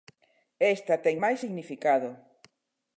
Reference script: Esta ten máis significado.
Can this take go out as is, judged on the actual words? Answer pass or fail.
pass